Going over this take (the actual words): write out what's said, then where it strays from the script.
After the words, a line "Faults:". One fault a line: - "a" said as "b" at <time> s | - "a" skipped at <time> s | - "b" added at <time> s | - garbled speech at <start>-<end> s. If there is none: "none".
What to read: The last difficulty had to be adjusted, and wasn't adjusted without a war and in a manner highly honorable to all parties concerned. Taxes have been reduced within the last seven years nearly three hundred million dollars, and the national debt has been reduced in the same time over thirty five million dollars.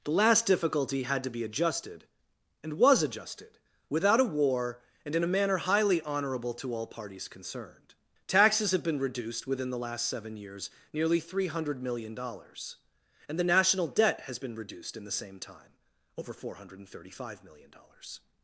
The last difficulty had to be adjusted, and was adjusted without a war and in a manner highly honorable to all parties concerned. Taxes have been reduced within the last seven years nearly three hundred million dollars, and the national debt has been reduced in the same time over four hundred thirty five million dollars.
Faults:
- "wasn't" said as "was" at 2.8 s
- "four hundred" added at 16.3 s